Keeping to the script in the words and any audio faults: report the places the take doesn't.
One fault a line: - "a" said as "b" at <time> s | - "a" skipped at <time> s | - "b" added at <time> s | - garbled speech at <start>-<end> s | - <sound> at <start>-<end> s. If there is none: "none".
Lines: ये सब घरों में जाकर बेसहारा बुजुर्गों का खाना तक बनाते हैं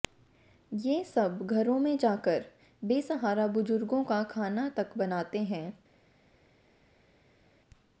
none